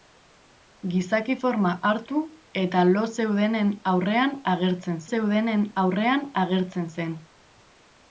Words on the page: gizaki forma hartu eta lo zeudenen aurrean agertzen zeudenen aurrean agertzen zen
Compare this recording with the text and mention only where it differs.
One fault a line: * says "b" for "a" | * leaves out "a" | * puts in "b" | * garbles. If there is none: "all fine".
all fine